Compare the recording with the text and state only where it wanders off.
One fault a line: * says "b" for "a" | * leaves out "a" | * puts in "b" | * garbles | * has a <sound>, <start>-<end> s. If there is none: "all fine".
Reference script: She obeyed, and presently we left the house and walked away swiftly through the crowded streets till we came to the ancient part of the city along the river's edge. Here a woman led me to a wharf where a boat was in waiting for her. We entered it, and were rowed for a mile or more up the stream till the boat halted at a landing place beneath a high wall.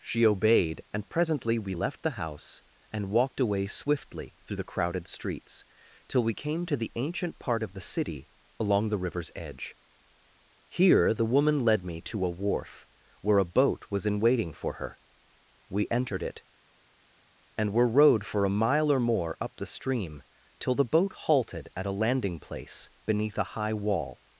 * says "the" for "a"